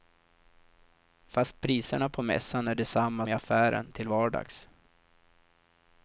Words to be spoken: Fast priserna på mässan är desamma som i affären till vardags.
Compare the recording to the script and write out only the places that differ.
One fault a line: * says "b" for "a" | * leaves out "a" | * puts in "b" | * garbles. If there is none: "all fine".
* leaves out "som"